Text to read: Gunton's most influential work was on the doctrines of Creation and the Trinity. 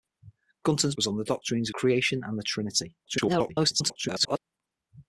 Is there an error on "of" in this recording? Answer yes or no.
yes